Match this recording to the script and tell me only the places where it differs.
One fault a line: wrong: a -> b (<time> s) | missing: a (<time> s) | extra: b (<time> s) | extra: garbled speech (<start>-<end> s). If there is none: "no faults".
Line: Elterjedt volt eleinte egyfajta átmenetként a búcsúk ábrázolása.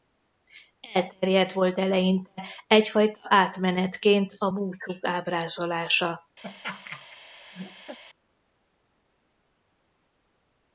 no faults